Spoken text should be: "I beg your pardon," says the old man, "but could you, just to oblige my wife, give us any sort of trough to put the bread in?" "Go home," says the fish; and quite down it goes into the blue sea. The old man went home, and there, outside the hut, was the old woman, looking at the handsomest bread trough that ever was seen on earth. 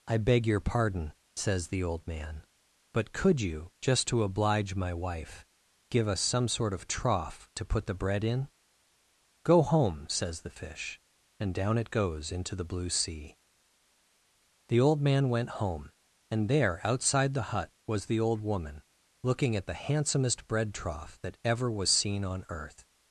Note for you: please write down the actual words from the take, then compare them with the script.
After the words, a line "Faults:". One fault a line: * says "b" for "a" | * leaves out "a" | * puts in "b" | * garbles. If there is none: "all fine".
"I beg your pardon," says the old man, "but could you, just to oblige my wife, give us some sort of trough to put the bread in?" "Go home," says the fish; and down it goes into the blue sea. The old man went home, and there, outside the hut, was the old woman, looking at the handsomest bread trough that ever was seen on earth.
Faults:
* says "some" for "any"
* leaves out "quite"